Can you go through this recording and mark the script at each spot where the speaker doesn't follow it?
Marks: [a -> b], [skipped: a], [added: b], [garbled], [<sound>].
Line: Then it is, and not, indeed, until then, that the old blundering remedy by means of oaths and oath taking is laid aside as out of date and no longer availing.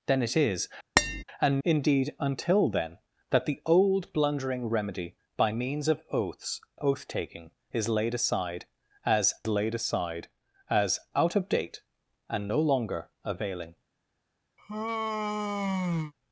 Then it is, [tap] and [skipped: not,] indeed, until then, that the old blundering remedy by means of oaths [skipped: and] oath taking is laid aside as [added: laid aside as] out of date and no longer availing. [sigh]